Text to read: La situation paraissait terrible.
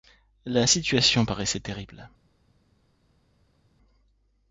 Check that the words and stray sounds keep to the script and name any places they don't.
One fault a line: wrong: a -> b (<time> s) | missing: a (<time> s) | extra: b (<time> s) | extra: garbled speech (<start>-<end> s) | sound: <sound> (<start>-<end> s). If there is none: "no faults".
no faults